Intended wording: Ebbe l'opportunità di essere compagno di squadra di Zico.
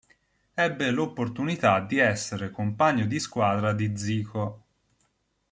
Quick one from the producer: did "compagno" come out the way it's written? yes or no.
yes